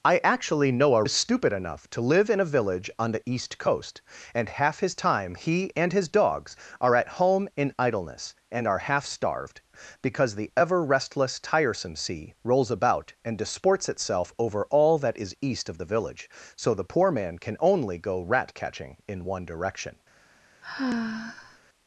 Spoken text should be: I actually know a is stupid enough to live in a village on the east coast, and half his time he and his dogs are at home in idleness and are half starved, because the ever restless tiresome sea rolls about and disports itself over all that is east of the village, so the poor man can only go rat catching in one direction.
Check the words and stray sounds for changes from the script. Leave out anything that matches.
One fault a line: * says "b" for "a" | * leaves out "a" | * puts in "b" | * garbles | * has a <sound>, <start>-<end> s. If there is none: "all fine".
* has a sigh, 20.6-21.6 s